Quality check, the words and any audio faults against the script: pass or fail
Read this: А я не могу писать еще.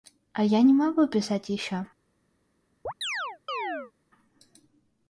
fail